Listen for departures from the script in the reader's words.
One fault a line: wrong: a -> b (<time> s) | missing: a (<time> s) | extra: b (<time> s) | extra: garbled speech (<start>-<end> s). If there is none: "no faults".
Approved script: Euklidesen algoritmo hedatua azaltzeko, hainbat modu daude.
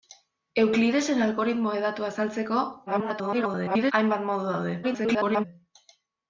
extra: garbled speech (2.9-3.9 s)
extra: garbled speech (4.8-5.4 s)